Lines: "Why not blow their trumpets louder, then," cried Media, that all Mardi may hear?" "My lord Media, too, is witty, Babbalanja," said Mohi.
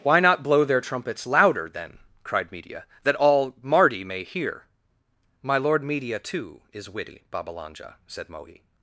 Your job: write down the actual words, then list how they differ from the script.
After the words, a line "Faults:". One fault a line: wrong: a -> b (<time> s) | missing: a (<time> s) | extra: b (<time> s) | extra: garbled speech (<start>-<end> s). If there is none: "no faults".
"Why not blow their trumpets louder, then," cried Media, that all Mardi may hear?" "My lord Media, too, is witty, Babbalanja," said Mohi.
Faults:
no faults